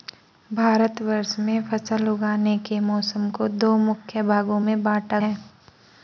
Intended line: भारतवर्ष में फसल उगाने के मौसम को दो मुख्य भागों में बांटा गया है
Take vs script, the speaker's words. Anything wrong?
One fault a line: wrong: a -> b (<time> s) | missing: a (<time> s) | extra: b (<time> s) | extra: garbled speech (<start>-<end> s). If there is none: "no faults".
missing: गया (5.2 s)